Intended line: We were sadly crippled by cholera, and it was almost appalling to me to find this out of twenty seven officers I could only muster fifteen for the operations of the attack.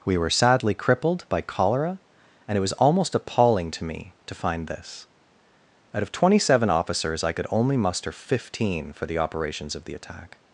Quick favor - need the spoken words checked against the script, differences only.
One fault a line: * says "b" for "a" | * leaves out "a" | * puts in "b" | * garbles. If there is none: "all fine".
all fine